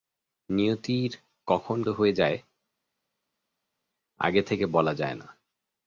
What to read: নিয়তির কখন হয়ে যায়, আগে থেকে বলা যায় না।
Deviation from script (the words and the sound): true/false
false